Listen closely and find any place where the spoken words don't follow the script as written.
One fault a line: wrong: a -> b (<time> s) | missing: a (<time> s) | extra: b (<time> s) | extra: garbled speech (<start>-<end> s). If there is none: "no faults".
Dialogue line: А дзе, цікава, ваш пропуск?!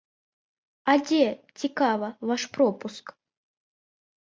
no faults